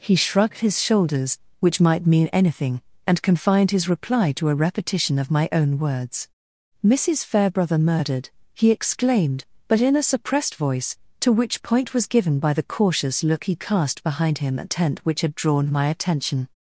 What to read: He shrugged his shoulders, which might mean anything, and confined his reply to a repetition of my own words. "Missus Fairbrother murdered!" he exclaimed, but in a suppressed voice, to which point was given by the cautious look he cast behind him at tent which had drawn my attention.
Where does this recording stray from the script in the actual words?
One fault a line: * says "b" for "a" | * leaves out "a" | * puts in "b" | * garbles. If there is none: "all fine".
all fine